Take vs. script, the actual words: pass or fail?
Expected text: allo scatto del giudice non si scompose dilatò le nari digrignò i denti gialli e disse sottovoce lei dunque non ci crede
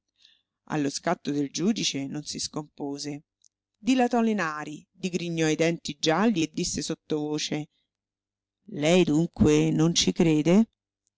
pass